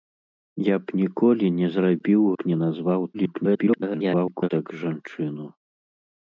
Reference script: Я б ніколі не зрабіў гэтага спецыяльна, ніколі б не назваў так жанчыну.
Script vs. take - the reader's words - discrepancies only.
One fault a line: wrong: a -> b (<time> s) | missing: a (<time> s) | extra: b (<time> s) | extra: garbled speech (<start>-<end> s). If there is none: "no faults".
missing: гэтага спецыяльна ніколі (2.2 s)
extra: garbled speech (3.1-4.5 s)